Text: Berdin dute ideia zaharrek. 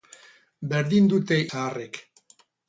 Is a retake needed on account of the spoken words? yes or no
yes